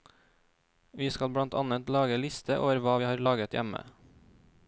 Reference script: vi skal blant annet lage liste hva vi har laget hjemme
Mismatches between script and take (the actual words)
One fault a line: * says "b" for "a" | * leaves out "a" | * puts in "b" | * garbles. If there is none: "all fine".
* puts in "over"